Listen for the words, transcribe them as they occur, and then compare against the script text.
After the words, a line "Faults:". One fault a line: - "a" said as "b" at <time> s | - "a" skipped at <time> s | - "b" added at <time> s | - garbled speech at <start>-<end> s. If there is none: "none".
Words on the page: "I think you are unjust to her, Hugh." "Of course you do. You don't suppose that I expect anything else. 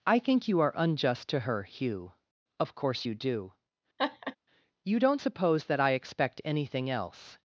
"I think you are unjust to her, Hugh." "Of course you do. You don't suppose that I expect anything else.
Faults:
none